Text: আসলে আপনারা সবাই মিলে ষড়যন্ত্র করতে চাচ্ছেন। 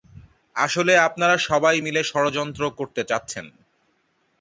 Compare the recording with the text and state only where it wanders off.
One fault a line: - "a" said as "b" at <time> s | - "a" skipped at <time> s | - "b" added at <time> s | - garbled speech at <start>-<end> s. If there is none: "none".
none